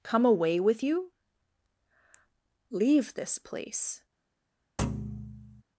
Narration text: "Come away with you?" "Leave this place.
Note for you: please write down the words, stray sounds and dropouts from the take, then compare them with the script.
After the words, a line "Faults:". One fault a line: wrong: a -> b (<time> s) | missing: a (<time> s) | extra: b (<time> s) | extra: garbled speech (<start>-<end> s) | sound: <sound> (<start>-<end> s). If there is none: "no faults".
"Come away with you?" "Leave this place.
Faults:
sound: thud (4.8-5.6 s)